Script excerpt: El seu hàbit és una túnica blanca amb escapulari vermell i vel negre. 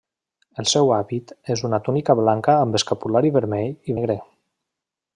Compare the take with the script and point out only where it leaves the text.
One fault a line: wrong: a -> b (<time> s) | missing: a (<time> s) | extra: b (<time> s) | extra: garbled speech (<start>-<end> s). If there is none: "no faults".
missing: vel (4.0 s)